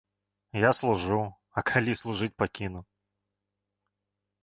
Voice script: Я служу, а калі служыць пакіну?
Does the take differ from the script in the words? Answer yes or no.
no